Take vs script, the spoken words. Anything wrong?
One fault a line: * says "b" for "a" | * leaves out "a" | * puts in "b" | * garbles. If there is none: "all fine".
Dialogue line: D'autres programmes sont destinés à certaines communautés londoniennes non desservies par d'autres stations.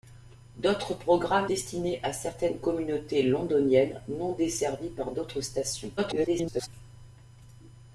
* leaves out "sont"
* garbles